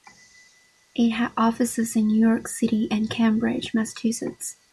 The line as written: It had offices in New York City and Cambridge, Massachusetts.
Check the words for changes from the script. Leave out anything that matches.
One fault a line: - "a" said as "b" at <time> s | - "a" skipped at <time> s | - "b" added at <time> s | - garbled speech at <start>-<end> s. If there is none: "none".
none